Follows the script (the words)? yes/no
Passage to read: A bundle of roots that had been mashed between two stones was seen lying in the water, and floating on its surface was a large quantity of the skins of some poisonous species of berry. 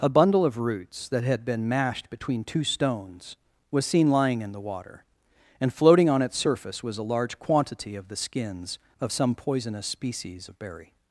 yes